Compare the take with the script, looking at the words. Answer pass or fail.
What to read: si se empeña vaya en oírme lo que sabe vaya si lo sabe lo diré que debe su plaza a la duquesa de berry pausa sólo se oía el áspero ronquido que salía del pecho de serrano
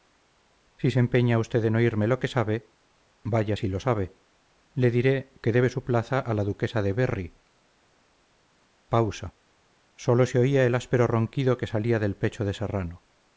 fail